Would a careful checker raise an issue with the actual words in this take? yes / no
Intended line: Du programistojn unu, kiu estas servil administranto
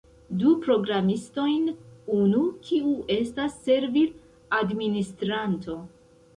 no